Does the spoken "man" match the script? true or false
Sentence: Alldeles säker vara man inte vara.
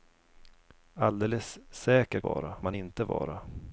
true